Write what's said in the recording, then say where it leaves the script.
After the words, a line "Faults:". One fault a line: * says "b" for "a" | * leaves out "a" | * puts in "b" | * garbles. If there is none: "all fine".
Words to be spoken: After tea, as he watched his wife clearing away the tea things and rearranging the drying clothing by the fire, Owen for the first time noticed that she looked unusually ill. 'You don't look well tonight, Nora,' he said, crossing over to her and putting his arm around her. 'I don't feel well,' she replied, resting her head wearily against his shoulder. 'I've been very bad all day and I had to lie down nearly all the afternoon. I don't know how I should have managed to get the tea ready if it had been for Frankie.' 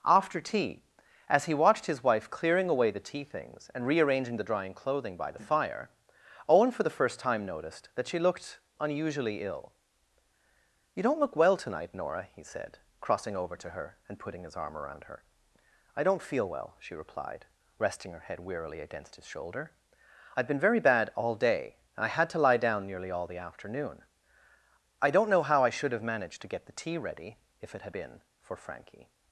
After tea, as he watched his wife clearing away the tea things and rearranging the drying clothing by the fire, Owen for the first time noticed that she looked unusually ill. 'You don't look well tonight, Nora,' he said, crossing over to her and putting his arm around her. 'I don't feel well,' she replied, resting her head wearily against his shoulder. 'I've been very bad all day and I had to lie down nearly all the afternoon. I don't know how I should have managed to get the tea ready if it had been for Frankie.'
Faults:
all fine